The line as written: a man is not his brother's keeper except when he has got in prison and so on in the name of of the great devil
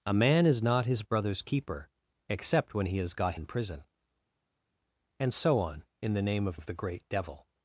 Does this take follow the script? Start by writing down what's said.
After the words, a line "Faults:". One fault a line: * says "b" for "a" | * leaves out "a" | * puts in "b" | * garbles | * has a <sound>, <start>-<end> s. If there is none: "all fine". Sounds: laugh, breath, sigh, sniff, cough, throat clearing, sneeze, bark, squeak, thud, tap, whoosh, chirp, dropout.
a man is not his brother's keeper except when he has got in prison and so on in the name of of the great devil
Faults:
all fine